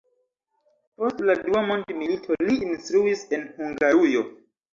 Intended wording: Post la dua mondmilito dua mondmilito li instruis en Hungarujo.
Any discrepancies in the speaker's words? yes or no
yes